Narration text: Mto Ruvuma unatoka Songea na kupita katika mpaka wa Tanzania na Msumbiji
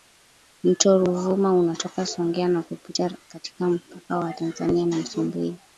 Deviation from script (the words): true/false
false